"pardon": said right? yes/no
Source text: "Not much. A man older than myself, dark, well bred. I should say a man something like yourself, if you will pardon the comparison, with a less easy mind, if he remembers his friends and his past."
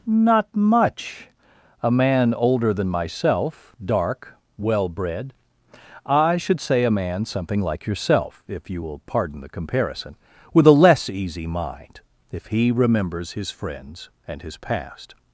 yes